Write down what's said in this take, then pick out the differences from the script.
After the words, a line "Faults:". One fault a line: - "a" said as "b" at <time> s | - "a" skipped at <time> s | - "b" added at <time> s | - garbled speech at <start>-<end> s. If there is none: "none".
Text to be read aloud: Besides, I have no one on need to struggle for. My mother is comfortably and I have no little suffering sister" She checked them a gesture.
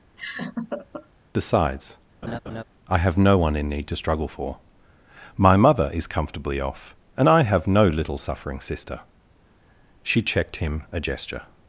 Besides, I have no one in need to struggle for. My mother is comfortably off, and I have no little suffering sister" She checked him a gesture.
Faults:
- "on" said as "in" at 3.5 s
- "off" added at 6.6 s
- "them" said as "him" at 10.6 s